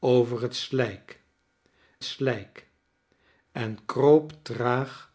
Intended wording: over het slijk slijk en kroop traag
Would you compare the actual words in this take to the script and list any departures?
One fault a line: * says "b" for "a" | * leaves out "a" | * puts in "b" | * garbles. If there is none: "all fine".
all fine